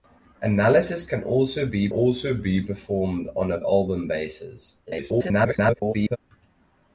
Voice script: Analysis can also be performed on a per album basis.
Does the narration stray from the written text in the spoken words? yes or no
yes